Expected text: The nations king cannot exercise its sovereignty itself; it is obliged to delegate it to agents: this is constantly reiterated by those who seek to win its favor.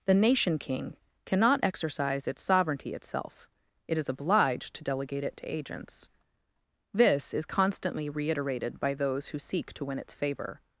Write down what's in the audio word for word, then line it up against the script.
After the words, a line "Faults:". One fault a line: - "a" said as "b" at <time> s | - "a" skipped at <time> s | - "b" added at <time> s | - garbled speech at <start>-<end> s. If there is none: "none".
The nation king cannot exercise its sovereignty itself; it is obliged to delegate it to agents: this is constantly reiterated by those who seek to win its favor.
Faults:
- "nations" said as "nation" at 0.1 s